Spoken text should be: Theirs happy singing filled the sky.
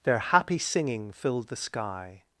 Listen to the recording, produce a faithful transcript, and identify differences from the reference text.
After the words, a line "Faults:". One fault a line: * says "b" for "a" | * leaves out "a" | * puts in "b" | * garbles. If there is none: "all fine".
Their happy singing filled the sky.
Faults:
* says "Their" for "Theirs"